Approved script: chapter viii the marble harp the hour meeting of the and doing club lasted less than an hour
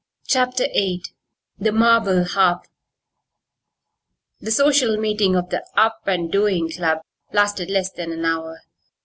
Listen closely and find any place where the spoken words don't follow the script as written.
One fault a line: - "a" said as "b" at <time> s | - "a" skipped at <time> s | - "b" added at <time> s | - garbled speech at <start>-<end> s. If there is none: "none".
- "hour" said as "social" at 4.5 s
- "up" added at 5.8 s